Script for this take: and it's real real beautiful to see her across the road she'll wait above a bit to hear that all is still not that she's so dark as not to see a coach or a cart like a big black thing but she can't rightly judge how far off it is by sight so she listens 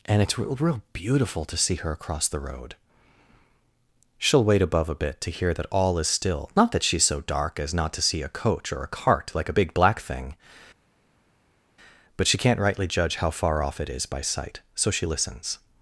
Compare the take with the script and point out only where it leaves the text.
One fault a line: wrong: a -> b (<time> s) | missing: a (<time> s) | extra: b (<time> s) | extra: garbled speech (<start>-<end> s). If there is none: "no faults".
no faults